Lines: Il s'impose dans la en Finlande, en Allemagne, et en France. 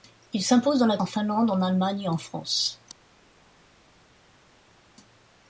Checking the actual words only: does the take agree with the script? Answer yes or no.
yes